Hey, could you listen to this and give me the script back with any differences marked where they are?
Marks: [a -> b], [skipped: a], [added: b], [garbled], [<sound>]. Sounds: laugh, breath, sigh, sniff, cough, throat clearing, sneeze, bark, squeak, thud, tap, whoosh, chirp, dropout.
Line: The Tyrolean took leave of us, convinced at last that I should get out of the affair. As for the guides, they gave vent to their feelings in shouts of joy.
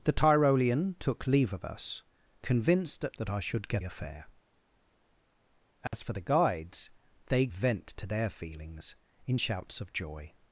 The Tyrolean took leave of us, convinced at [skipped: last] that I should get [skipped: out of the] affair. As [dropout] for the guides, they [skipped: gave] vent to their feelings in shouts of joy.